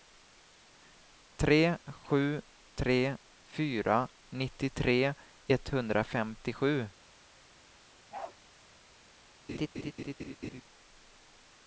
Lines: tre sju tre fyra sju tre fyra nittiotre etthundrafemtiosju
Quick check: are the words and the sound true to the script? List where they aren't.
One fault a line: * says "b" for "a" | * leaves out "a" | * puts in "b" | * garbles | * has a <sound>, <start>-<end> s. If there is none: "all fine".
* leaves out "sju tre fyra"
* has a bark, 8.1-8.4 s
* has a laugh, 9.5-10.6 s